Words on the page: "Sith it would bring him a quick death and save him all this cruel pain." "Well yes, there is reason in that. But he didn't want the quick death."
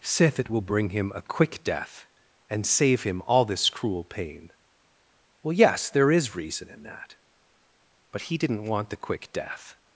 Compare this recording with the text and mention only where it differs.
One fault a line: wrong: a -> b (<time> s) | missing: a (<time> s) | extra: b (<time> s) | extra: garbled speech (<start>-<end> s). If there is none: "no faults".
wrong: would -> will (0.5 s)